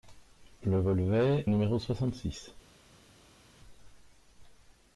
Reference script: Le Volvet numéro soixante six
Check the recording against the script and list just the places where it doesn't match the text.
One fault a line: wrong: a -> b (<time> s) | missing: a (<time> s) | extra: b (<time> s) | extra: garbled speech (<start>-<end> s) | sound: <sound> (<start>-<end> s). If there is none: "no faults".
no faults